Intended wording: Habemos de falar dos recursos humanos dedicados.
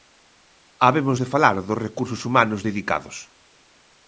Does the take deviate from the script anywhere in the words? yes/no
no